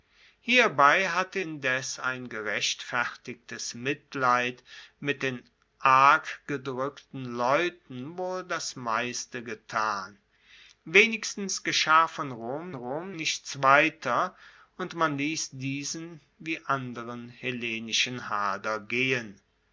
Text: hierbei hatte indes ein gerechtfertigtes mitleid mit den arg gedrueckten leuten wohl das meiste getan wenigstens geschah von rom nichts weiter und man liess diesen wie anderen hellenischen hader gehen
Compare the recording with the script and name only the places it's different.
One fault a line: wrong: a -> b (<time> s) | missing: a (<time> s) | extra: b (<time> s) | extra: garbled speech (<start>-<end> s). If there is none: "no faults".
extra: rom (12.7 s)